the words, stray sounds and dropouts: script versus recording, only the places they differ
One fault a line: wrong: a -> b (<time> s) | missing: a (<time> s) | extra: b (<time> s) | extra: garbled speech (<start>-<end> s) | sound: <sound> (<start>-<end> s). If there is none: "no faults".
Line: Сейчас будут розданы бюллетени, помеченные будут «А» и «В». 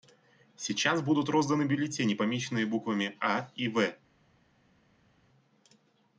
wrong: будут -> буквами (2.6 s)